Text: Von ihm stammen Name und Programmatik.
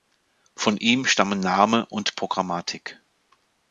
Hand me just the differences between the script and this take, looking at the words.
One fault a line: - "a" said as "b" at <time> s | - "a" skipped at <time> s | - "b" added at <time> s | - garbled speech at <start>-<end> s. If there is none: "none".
none